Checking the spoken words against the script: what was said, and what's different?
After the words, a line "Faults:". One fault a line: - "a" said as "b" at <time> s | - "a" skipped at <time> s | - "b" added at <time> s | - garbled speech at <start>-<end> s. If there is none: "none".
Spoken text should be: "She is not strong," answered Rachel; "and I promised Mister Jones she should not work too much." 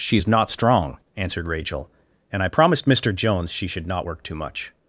"She is not strong," answered Rachel; "and I promised Mister Jones she should not work too much."
Faults:
none